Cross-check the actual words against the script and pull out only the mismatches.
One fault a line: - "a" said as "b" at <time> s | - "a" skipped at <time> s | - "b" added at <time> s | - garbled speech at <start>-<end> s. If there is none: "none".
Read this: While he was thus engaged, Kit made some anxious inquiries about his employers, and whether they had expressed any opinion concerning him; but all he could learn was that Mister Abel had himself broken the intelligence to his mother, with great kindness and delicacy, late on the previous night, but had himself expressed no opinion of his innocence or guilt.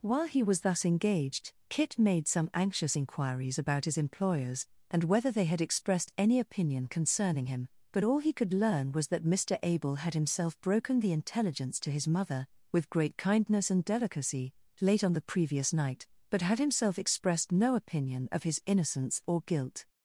none